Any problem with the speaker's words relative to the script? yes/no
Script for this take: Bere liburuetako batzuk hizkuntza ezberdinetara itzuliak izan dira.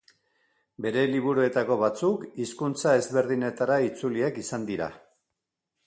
no